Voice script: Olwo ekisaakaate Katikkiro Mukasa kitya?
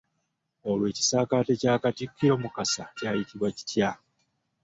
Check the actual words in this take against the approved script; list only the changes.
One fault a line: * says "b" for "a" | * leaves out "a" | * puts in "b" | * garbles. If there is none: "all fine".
* puts in "kya"
* puts in "kyayitibwa"